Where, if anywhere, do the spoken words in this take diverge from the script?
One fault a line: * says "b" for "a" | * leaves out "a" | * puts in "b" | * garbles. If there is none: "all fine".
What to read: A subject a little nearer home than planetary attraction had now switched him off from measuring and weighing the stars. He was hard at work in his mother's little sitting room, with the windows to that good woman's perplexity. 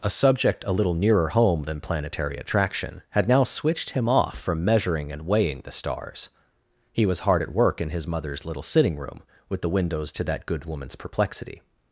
all fine